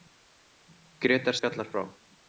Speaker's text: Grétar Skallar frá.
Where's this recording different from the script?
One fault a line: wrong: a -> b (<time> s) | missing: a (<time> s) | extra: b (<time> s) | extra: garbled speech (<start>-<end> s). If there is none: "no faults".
no faults